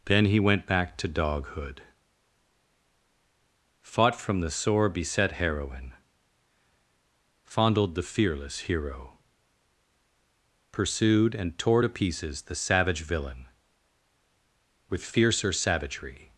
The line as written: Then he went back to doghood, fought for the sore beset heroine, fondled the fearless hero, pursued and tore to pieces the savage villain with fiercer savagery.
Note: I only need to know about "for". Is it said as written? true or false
false